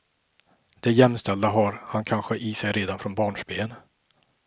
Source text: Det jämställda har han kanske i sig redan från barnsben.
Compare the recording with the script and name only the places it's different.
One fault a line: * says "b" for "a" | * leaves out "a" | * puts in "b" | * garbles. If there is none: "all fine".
all fine